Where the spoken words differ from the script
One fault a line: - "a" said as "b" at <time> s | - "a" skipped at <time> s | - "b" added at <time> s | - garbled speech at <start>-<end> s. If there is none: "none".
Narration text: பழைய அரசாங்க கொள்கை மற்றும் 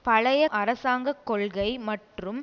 none